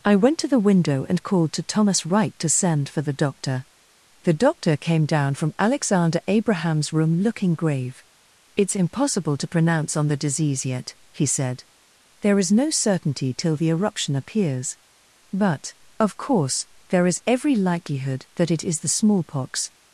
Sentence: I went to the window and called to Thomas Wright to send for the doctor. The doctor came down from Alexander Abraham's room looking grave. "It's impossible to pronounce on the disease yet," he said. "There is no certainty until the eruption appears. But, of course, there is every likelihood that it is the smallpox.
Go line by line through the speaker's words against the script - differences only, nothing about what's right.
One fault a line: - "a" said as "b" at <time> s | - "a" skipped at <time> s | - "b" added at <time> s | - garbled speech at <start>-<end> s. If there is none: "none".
- "until" said as "till" at 13.3 s